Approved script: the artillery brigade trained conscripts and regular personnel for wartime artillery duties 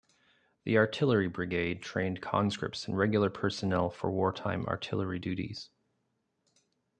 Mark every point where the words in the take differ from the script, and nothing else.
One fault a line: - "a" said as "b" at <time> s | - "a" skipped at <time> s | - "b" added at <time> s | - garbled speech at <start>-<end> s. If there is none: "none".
none